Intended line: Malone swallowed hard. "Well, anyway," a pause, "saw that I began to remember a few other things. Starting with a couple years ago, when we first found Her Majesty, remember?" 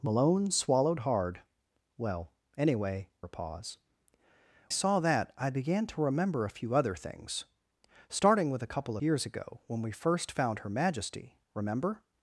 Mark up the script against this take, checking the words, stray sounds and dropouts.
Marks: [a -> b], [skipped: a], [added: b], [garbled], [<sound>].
Malone swallowed hard. "Well, anyway," a pause, "saw that I began to remember a few other things. Starting with a couple years ago, when we first found Her Majesty, remember?"